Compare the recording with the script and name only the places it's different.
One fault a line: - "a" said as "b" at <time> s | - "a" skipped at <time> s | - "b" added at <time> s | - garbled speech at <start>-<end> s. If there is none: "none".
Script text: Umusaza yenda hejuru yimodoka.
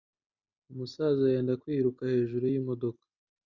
- "kwiruka" added at 1.6 s